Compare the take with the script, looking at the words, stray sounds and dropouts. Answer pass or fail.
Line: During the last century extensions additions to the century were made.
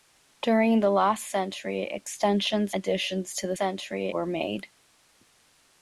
pass